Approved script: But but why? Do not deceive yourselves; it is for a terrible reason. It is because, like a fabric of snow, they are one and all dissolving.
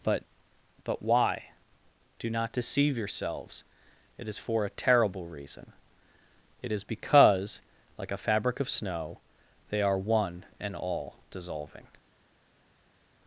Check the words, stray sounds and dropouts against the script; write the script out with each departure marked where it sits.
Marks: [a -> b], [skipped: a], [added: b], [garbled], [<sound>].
But but why? Do not deceive yourselves; it is for a terrible reason. It is because, like a fabric of snow, they are one and all dissolving.